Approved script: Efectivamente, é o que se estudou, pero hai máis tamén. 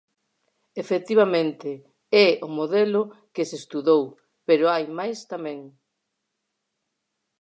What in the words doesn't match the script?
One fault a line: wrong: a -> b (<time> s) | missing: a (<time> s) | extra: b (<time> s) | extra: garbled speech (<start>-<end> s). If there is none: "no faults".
extra: modelo (2.5 s)